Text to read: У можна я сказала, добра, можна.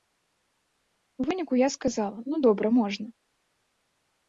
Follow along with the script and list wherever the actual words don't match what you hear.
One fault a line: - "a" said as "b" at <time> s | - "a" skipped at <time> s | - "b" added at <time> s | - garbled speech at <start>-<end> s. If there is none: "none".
- "можна" said as "выніку" at 1.3 s
- "ну" added at 2.2 s